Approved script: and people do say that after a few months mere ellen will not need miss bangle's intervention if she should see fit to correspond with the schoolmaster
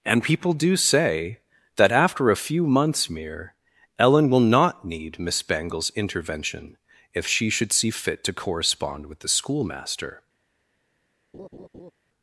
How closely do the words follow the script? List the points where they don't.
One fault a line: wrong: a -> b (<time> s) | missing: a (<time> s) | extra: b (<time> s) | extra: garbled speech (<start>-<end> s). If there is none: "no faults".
no faults